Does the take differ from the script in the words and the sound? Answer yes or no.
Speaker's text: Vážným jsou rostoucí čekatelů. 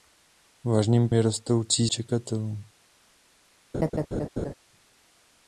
yes